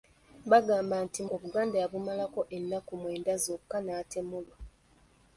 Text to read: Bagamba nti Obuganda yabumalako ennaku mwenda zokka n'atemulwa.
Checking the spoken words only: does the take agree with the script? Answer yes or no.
yes